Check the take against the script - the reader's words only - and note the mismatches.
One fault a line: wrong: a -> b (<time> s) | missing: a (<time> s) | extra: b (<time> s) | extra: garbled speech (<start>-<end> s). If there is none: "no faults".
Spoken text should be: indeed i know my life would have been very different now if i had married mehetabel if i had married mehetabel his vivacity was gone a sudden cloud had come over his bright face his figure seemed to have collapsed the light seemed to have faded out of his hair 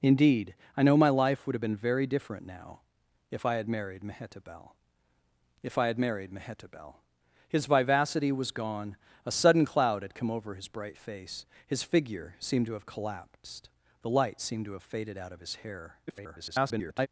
extra: garbled speech (16.1-17.1 s)